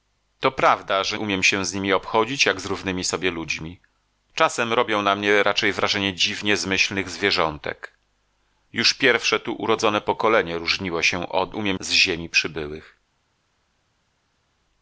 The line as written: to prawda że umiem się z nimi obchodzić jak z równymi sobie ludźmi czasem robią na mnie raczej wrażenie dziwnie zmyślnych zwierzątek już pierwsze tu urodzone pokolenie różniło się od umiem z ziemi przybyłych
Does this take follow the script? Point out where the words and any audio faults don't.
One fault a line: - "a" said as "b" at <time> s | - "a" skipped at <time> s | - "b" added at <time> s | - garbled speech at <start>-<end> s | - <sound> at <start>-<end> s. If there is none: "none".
none